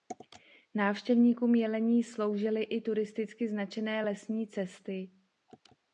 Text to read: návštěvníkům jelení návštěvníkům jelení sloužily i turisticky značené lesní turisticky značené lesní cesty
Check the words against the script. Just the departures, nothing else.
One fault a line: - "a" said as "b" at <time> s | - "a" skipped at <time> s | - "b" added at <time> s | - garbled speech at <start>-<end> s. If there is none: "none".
- "návštěvníkům jelení" skipped at 2.0 s
- "turisticky značené lesní" skipped at 4.5 s